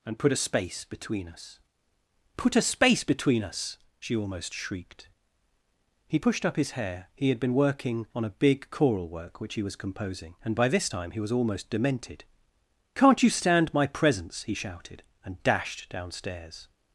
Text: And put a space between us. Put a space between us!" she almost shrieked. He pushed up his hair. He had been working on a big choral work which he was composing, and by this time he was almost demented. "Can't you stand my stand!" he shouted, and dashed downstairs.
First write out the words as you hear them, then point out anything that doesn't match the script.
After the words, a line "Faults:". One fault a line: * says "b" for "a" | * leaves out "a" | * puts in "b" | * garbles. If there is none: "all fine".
And put a space between us. Put a space between us!" she almost shrieked. He pushed up his hair. He had been working on a big choral work which he was composing, and by this time he was almost demented. "Can't you stand my presence!" he shouted, and dashed downstairs.
Faults:
* says "presence" for "stand"